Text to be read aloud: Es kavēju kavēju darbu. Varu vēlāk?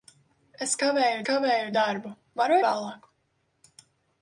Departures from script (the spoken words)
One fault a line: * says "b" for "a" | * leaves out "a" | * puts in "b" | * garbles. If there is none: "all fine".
all fine